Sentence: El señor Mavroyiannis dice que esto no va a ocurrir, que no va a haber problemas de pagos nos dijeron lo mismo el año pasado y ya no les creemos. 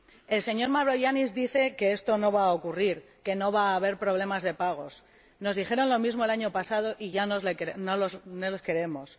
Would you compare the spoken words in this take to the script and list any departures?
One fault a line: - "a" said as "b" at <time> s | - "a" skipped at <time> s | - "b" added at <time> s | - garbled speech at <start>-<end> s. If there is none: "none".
none